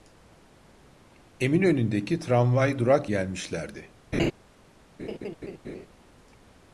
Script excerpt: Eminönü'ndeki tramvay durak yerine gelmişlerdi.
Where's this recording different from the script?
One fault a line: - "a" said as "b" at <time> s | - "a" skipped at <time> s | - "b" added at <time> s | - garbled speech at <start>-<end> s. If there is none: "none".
- "yerine" skipped at 3.1 s